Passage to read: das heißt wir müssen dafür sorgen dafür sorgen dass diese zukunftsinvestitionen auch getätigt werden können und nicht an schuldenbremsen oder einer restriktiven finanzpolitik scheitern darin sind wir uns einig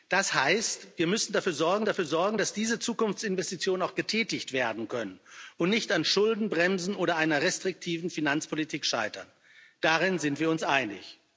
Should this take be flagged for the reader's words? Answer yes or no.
no